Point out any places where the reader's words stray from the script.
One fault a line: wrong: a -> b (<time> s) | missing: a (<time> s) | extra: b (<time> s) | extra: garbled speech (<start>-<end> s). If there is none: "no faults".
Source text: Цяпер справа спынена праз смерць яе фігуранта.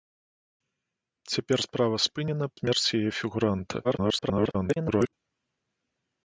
missing: праз (2.5 s)
extra: garbled speech (3.8-5.1 s)